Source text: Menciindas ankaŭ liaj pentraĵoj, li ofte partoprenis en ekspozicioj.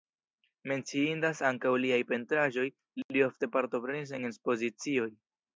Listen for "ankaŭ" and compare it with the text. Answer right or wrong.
right